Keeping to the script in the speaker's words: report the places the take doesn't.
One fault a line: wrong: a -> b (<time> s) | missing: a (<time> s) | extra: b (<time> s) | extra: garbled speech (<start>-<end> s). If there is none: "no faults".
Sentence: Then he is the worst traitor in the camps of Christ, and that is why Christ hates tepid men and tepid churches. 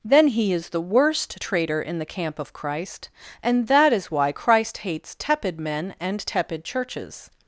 wrong: camps -> camp (2.0 s)